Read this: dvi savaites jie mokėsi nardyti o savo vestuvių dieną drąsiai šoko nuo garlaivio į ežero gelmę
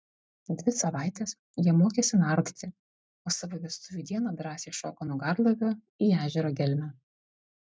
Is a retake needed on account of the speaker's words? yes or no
no